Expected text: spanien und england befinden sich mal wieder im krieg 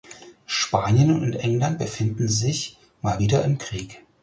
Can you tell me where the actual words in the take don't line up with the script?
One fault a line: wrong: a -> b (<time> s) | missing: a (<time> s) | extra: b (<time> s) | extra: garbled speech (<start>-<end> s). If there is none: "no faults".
no faults